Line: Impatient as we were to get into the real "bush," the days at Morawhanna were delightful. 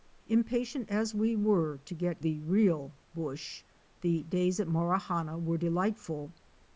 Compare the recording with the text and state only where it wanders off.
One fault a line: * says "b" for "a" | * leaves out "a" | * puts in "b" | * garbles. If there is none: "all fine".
* leaves out "into"